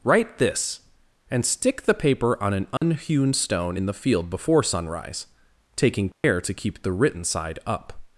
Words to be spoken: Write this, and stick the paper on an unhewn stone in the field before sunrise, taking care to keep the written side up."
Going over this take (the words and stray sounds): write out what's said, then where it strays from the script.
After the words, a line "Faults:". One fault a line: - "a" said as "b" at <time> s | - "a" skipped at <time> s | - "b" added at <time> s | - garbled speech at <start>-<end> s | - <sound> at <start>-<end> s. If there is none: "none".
Write this, and stick the paper on an unhewn stone in the field before sunrise, taking care to keep the written side up."
Faults:
- dropout at 2.8-2.8 s
- dropout at 6.1-6.2 s